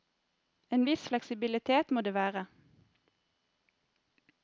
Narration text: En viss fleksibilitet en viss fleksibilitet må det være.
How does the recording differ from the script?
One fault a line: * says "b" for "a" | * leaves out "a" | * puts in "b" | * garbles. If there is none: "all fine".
* leaves out "en viss fleksibilitet"